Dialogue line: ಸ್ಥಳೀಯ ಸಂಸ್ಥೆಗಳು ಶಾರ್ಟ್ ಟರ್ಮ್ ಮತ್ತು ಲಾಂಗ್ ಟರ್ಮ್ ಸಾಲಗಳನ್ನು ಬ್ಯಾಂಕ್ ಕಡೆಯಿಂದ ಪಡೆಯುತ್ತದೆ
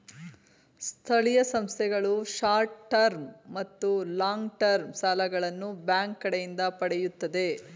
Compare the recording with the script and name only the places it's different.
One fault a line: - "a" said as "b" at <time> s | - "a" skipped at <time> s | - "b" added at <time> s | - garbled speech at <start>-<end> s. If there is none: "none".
none